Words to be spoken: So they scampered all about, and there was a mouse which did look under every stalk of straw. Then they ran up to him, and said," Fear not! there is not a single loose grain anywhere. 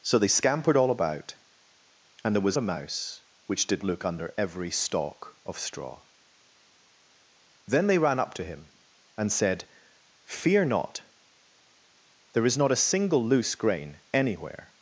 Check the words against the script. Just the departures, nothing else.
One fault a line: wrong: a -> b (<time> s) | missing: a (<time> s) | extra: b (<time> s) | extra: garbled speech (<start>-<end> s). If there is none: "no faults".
no faults